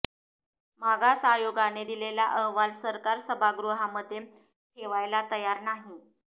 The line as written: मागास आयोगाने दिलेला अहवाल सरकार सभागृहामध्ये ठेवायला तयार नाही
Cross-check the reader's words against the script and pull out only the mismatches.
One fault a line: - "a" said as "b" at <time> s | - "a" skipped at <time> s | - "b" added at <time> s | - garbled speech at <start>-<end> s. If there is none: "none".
none